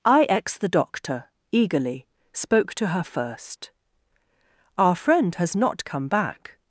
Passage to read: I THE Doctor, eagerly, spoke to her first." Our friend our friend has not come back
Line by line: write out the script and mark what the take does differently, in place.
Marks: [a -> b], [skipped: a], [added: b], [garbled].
I [added: X] THE Doctor, eagerly, spoke to her first." Our friend [skipped: our friend] has not come back